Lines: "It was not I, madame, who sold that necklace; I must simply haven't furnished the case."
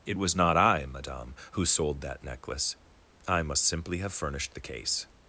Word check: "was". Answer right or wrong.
right